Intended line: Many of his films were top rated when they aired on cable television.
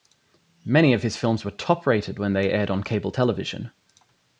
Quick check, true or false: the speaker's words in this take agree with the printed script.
true